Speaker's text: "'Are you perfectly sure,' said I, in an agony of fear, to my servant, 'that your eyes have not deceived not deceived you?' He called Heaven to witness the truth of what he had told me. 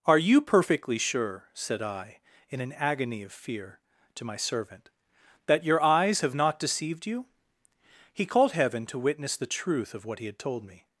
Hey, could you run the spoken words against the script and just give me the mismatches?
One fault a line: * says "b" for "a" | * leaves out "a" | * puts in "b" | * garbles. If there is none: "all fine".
* leaves out "not deceived"